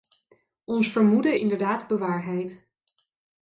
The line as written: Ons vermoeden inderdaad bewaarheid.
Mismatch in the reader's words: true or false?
false